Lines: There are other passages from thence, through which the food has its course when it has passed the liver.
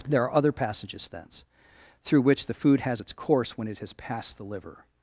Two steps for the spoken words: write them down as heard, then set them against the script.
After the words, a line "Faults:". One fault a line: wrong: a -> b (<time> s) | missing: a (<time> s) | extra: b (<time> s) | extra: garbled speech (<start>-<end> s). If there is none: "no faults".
There are other passages thence, through which the food has its course when it has passed the liver.
Faults:
missing: from (1.1 s)